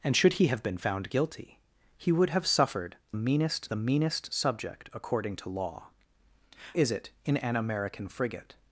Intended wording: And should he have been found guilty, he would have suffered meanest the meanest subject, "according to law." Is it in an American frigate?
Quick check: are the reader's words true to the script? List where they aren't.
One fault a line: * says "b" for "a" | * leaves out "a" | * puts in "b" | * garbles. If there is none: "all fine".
all fine